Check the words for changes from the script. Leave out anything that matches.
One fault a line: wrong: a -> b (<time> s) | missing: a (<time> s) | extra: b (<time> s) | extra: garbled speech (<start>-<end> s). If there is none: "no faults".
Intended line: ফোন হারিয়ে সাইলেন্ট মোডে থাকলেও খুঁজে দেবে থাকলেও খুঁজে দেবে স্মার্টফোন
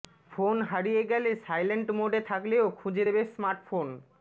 extra: গেলে (1.1 s)
missing: থাকলেও খুঁজে দেবে (3.2 s)